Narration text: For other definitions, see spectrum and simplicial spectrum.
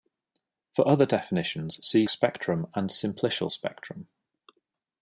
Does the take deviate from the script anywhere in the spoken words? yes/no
no